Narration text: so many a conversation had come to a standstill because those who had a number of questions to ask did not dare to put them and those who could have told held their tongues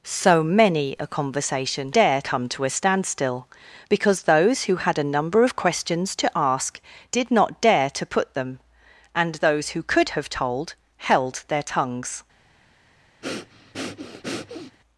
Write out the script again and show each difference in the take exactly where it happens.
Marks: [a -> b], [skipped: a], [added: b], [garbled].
so many a conversation [had -> dare] come to a standstill because those who had a number of questions to ask did not dare to put them and those who could have told held their tongues